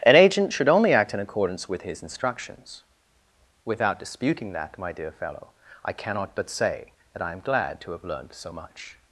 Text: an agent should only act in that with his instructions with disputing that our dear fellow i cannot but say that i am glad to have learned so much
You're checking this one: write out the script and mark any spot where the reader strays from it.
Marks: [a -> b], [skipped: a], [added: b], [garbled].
an agent should only act in [that -> accordance] with his instructions [with -> without] disputing that [our -> my] dear fellow i cannot but say that i am glad to have learned so much